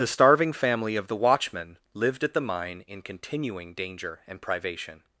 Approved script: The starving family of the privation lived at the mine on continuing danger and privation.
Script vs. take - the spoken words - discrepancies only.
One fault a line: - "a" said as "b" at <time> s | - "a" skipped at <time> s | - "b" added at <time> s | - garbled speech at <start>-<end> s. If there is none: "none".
- "privation" said as "watchman" at 1.1 s
- "on" said as "in" at 2.9 s